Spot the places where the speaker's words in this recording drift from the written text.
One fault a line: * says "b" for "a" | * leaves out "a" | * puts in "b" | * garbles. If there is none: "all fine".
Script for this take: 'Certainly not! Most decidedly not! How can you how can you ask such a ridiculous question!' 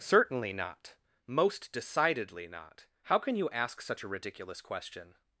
* leaves out "how can you"